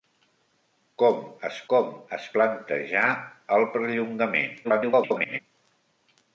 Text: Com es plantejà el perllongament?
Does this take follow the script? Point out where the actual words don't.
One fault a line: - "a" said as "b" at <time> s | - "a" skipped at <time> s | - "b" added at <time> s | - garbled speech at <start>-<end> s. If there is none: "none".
- "com es" added at 1.7 s
- garbled speech at 4.6-5.4 s